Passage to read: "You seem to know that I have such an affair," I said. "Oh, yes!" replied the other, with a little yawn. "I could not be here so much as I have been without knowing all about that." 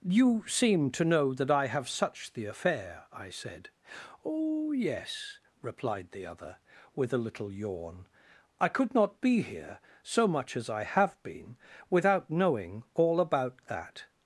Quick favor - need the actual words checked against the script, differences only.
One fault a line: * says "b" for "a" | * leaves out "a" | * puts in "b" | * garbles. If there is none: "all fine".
* says "the" for "an"